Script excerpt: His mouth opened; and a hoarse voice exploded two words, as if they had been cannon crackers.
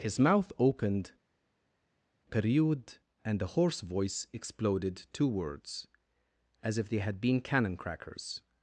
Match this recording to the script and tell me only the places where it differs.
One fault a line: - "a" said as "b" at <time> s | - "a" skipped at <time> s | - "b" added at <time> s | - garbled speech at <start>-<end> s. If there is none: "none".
- "period" added at 2.3 s